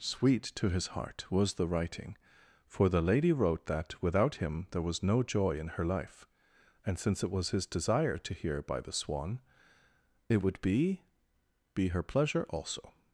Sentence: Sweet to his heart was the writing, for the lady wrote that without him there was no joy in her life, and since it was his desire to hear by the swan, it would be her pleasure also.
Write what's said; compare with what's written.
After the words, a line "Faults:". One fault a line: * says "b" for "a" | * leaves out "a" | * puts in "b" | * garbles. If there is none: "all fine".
Sweet to his heart was the writing, for the lady wrote that without him there was no joy in her life, and since it was his desire to hear by the swan, it would be be her pleasure also.
Faults:
* puts in "be"